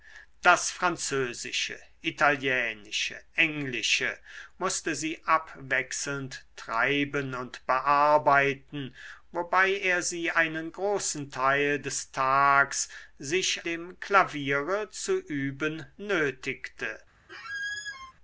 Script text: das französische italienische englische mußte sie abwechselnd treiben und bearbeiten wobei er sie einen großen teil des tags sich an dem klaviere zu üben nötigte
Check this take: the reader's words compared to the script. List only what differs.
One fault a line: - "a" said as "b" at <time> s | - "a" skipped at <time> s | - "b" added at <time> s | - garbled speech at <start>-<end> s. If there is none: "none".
- "an" skipped at 13.6 s